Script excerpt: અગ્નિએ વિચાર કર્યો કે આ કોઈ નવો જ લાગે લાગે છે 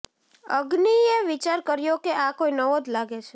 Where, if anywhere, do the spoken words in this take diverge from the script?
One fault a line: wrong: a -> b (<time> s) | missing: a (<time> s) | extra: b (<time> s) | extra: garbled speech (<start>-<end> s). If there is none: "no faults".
missing: લાગે (3.2 s)